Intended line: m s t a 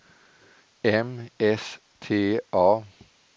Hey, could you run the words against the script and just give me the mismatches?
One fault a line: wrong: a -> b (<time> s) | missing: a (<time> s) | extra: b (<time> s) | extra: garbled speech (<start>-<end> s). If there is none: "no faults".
no faults